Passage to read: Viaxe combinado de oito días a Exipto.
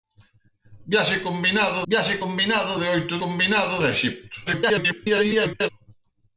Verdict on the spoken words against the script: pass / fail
fail